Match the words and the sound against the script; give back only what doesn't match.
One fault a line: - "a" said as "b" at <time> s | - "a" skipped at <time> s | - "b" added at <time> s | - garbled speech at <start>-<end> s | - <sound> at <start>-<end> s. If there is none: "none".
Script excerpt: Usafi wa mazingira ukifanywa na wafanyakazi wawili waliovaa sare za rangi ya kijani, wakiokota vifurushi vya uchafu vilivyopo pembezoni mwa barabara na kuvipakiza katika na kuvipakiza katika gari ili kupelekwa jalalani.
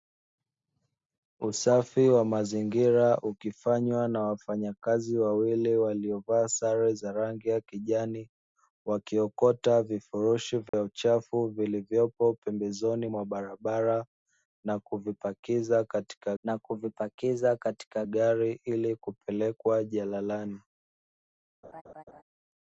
- dropout at 10.7-10.7 s
- laugh at 21.6-22.2 s